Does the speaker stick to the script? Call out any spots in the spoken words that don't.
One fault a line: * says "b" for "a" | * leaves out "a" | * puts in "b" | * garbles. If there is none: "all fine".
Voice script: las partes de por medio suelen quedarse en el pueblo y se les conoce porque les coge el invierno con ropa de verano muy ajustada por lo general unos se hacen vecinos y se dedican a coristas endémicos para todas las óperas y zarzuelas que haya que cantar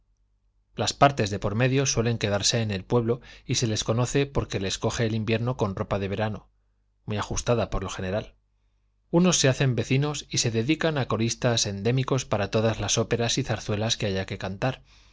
all fine